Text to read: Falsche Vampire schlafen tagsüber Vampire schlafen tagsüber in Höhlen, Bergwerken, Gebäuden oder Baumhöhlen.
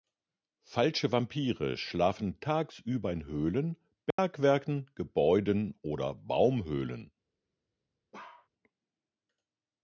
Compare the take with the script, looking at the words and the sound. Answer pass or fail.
fail